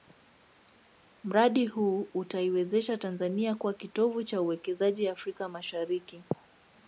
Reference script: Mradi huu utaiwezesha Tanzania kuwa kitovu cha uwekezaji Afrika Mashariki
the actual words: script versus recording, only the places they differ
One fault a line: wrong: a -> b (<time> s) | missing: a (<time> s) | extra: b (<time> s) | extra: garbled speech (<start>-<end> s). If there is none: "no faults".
no faults